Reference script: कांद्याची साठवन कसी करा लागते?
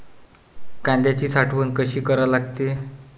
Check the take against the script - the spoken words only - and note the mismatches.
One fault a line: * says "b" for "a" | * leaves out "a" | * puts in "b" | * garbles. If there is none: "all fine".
all fine